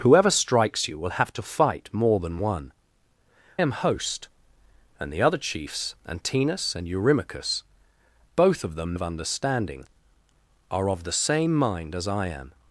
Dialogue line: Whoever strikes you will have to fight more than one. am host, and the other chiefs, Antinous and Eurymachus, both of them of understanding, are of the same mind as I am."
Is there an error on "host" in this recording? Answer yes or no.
no